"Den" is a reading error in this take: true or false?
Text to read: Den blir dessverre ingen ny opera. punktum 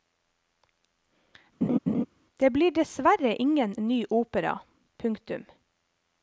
true